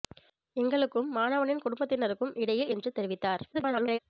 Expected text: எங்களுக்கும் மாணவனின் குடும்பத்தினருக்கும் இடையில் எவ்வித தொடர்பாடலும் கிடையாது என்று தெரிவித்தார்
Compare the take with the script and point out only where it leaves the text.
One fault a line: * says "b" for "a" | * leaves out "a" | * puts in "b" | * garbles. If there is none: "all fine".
* leaves out "எவ்வித தொடர்பாடலும் கிடையாது"
* garbles